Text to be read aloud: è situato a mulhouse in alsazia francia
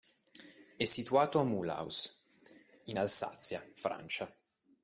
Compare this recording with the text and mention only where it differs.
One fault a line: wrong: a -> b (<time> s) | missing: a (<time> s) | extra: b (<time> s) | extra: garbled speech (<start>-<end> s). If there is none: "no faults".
no faults